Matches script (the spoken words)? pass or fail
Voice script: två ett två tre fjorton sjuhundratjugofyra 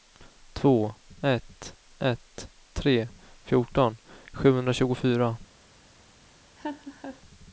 fail